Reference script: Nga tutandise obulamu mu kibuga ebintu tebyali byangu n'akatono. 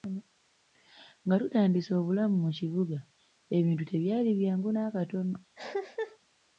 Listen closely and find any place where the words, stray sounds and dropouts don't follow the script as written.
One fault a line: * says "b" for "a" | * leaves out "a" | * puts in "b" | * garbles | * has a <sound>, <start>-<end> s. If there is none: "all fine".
* has a cough, 5.6-6.2 s